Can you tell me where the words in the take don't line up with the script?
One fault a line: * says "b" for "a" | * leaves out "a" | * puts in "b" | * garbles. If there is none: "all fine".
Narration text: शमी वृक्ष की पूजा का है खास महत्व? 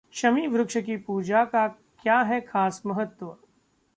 * puts in "क्या"